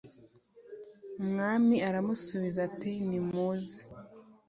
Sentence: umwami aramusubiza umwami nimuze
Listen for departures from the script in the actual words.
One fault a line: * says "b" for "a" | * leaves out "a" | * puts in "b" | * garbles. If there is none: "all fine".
* says "ati" for "umwami"